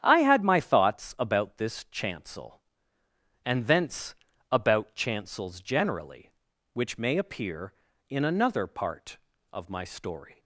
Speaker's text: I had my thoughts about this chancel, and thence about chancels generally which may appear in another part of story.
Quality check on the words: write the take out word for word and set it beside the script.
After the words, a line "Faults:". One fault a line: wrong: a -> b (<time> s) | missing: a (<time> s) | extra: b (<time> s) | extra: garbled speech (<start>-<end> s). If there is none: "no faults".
I had my thoughts about this chancel, and thence about chancels generally which may appear in another part of my story.
Faults:
extra: my (9.7 s)